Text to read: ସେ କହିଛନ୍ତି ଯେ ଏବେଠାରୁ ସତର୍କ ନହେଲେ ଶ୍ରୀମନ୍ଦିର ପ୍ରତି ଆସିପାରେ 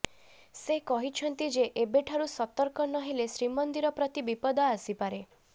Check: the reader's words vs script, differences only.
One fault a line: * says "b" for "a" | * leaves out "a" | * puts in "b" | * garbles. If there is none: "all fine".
* puts in "ବିପଦ"